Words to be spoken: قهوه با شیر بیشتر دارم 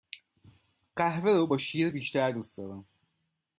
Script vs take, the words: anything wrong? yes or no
yes